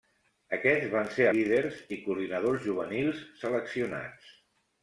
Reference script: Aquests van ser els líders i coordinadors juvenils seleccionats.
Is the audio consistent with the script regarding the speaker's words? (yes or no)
no